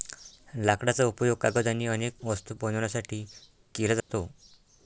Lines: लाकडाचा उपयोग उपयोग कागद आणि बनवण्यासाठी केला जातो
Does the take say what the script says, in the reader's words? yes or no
no